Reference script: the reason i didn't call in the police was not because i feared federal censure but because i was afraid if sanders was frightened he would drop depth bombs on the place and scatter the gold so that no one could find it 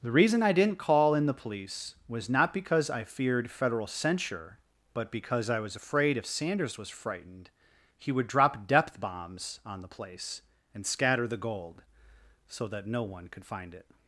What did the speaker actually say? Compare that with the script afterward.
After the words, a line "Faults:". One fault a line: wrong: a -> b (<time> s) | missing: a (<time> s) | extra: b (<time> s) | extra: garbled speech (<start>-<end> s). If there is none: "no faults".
the reason i didn't call in the police was not because i feared federal censure but because i was afraid if sanders was frightened he would drop depth bombs on the place and scatter the gold so that no one could find it
Faults:
no faults